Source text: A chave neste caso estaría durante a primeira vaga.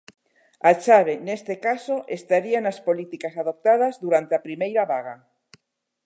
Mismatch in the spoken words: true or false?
true